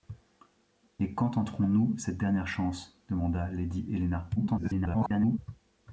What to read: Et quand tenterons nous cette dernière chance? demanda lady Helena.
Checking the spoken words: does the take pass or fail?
fail